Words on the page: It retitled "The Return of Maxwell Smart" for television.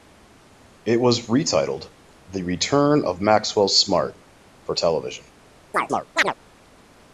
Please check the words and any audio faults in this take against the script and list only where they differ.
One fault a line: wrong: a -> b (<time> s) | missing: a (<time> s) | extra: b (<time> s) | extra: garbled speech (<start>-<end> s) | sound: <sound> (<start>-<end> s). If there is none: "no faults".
extra: was (1.0 s)
sound: chirp (5.7-6.3 s)